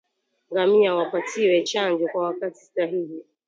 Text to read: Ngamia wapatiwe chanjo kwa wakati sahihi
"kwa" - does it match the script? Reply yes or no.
yes